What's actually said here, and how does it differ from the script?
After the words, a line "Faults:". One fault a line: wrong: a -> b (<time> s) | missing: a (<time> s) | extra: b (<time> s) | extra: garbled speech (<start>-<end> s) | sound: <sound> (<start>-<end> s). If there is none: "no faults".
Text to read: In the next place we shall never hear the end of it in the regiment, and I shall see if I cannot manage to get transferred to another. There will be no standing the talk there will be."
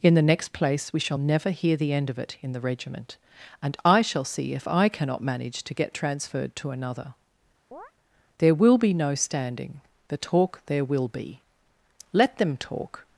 In the next place we shall never hear the end of it in the regiment, and I shall see if I cannot manage to get transferred to another. There will be no standing the talk there will be." "Let them talk
Faults:
sound: chirp (7.7-7.9 s)
extra: Let them talk (12.1 s)